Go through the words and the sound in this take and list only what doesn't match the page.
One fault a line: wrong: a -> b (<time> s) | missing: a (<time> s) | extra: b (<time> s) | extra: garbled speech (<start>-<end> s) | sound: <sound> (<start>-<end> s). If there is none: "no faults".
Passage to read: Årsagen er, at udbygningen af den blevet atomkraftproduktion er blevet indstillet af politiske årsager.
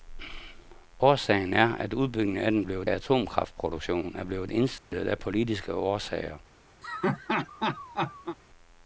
sound: dropout (4.8-4.9 s)
sound: laugh (6.8-8.4 s)